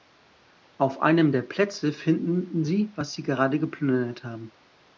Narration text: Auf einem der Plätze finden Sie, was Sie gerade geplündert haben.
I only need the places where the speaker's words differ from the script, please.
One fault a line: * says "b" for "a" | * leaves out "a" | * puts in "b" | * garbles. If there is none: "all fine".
all fine